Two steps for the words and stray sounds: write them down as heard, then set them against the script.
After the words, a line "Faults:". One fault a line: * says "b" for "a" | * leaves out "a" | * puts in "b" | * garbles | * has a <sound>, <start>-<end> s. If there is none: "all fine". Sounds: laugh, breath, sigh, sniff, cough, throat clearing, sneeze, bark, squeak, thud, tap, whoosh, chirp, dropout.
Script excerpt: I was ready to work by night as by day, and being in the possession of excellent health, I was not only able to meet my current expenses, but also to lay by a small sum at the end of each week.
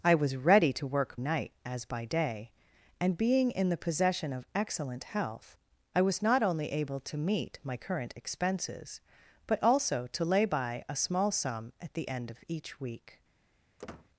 I was ready to work night as by day, and being in the possession of excellent health, I was not only able to meet my current expenses, but also to lay by a small sum at the end of each week.
Faults:
* leaves out "by"
* has a squeak, 13.8-14.1 s